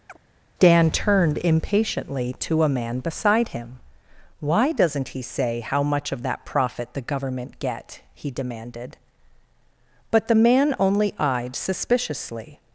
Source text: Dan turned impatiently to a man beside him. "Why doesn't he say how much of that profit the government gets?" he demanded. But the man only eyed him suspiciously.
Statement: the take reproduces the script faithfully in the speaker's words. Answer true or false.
false